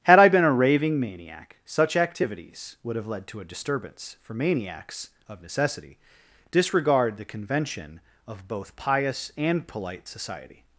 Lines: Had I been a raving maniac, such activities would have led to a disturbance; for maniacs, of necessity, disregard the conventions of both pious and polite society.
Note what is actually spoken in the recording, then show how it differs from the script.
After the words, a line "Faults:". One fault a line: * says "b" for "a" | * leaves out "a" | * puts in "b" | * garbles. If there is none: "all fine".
Had I been a raving maniac, such activities would have led to a disturbance; for maniacs, of necessity, disregard the convention of both pious and polite society.
Faults:
* says "convention" for "conventions"